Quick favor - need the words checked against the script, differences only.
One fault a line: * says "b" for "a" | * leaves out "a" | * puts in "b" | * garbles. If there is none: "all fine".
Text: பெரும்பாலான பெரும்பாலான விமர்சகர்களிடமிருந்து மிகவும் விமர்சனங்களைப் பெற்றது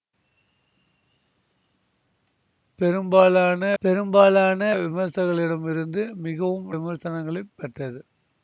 all fine